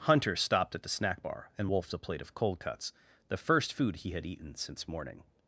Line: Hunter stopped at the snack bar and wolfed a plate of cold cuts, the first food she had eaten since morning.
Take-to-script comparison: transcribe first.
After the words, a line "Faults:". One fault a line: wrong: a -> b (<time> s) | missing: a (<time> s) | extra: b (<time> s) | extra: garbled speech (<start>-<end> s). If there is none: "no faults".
Hunter stopped at the snack bar and wolfed a plate of cold cuts, the first food he had eaten since morning.
Faults:
wrong: she -> he (4.0 s)